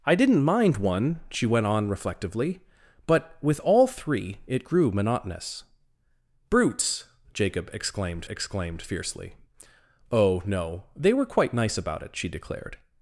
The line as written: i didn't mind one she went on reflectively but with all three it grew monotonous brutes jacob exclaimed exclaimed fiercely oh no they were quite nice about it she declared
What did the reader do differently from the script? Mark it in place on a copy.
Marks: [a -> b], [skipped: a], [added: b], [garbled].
i didn't mind one she went on reflectively but with all three it grew monotonous brutes jacob exclaimed exclaimed fiercely oh no they were quite nice about it she declared